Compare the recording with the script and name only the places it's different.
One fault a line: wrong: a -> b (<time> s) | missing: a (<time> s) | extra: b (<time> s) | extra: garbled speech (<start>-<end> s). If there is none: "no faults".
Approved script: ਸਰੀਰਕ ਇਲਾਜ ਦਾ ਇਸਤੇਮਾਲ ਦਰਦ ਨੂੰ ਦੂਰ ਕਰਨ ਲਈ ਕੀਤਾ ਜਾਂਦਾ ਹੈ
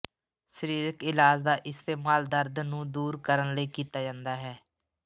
no faults